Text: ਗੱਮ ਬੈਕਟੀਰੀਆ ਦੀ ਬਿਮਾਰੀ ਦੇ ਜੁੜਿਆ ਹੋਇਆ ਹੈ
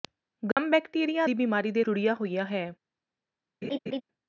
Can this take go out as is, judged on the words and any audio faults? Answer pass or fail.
fail